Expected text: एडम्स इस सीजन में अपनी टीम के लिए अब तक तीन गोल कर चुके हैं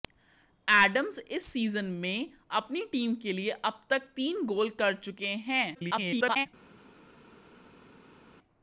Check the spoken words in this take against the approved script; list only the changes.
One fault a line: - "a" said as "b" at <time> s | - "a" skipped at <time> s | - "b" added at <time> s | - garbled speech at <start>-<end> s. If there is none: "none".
- garbled speech at 5.7-6.5 s